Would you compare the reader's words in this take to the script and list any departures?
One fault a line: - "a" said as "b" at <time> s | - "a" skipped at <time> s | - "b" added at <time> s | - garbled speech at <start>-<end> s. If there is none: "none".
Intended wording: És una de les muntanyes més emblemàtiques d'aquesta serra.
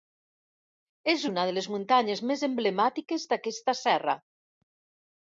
none